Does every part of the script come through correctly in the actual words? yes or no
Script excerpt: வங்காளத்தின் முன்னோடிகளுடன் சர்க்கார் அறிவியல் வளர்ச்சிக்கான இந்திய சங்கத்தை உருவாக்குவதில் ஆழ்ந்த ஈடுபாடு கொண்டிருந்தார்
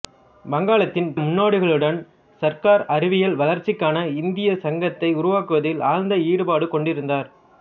yes